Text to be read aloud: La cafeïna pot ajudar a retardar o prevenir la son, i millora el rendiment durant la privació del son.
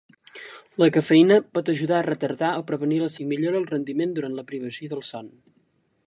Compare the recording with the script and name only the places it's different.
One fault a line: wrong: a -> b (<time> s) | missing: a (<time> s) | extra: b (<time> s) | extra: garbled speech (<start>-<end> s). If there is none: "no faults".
missing: son (3.1 s)